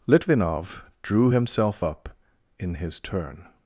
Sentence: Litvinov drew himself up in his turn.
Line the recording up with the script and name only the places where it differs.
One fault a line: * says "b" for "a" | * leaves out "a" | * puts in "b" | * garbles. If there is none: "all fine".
all fine